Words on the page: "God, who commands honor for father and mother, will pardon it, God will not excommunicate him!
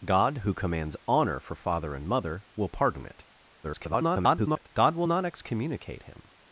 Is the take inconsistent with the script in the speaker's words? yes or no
yes